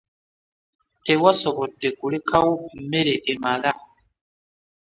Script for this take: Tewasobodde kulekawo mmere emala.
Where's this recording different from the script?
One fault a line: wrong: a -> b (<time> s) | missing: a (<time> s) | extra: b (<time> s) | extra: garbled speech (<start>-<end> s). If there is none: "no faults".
no faults